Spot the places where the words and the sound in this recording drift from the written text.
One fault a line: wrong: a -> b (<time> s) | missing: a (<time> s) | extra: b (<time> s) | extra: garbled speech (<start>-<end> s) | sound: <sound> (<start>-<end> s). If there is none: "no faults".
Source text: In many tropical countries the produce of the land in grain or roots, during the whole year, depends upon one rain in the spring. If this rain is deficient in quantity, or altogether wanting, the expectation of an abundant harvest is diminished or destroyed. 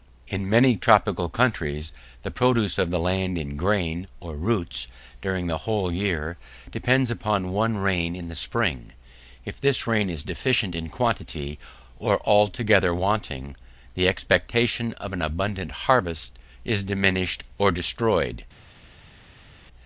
no faults